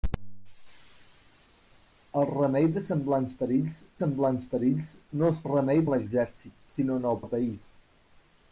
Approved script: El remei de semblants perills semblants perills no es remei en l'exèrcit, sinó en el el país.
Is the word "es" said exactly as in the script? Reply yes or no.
yes